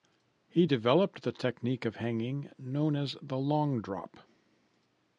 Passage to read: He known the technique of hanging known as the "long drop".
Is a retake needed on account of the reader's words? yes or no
yes